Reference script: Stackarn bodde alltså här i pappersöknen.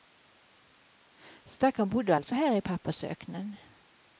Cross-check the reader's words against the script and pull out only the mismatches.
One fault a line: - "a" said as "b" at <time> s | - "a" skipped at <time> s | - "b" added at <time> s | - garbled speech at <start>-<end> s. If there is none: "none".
none